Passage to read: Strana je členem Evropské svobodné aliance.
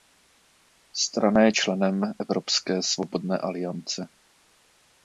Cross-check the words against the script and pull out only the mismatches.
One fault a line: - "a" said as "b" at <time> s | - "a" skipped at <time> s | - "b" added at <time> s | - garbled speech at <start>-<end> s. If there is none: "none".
none